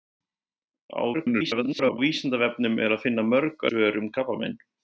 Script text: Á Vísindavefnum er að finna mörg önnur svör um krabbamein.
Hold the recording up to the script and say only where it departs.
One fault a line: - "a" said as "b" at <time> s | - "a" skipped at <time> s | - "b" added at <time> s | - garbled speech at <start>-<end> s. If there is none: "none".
- garbled speech at 1.1-2.0 s
- "önnur" skipped at 3.7 s